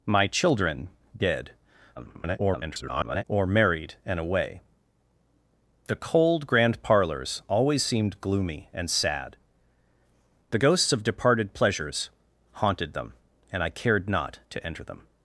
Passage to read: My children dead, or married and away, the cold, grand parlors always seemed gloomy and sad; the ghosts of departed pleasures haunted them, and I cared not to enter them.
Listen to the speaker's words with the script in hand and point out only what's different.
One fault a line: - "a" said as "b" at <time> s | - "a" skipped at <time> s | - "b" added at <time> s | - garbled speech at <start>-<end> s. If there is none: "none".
- garbled speech at 2.0-3.2 s